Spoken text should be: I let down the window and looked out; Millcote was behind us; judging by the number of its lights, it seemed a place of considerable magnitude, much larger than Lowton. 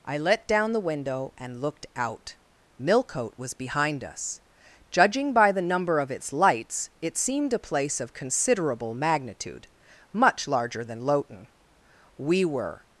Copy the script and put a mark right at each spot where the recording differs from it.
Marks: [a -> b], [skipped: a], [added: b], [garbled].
I let down the window and looked out; Millcote was behind us; judging by the number of its lights, it seemed a place of considerable magnitude, much larger than Lowton. [added: We were]